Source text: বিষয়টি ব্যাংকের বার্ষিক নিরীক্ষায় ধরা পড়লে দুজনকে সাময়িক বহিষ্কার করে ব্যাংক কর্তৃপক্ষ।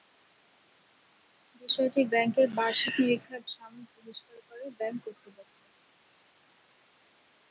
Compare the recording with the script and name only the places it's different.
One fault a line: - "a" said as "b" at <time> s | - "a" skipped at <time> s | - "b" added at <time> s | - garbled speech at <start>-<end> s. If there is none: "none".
- "ধরা পড়লে দুজনকে" skipped at 3.4 s